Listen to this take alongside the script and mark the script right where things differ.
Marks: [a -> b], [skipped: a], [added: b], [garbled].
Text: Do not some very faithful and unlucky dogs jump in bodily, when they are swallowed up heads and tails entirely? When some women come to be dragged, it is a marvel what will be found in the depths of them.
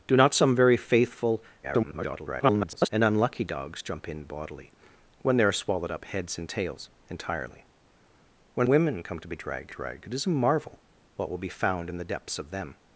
Do not some very faithful [garbled] and unlucky dogs jump in bodily, when they are swallowed up heads and tails entirely? When [skipped: some] women come to be dragged, [added: dragged] it is a marvel what will be found in the depths of them.